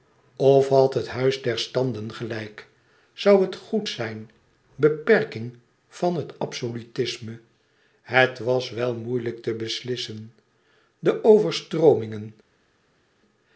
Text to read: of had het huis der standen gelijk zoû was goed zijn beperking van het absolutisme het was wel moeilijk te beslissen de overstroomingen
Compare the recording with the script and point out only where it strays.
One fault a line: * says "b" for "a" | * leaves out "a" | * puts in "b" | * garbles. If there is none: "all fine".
* says "het" for "was"